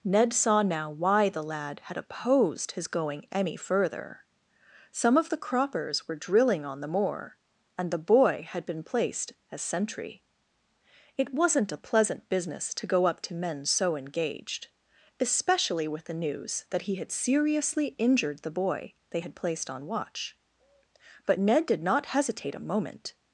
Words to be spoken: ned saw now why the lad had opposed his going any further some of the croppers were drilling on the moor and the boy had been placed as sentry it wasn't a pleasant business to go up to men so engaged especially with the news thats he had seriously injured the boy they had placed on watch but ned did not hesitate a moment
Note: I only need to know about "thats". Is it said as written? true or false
false